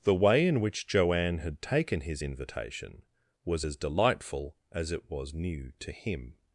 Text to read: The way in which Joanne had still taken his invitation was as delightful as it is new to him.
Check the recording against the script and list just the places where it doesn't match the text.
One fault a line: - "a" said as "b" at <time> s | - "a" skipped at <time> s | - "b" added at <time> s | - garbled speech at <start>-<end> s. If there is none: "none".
- "still" skipped at 1.6 s
- "is" said as "was" at 5.1 s